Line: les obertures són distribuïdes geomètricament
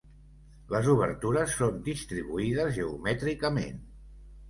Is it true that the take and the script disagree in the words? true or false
false